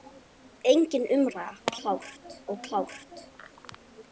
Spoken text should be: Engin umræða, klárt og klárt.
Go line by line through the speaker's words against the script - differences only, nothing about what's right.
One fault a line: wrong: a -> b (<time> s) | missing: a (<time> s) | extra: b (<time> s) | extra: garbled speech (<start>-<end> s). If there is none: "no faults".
no faults